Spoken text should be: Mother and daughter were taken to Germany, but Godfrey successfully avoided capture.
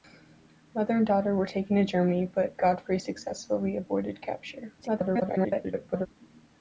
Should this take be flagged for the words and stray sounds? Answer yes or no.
yes